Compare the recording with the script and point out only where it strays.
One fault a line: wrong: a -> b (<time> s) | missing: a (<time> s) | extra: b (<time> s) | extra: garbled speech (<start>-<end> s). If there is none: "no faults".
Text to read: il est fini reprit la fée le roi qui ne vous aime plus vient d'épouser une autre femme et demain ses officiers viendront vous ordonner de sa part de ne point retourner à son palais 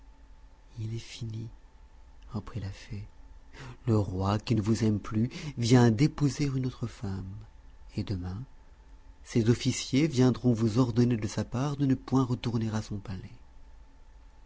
no faults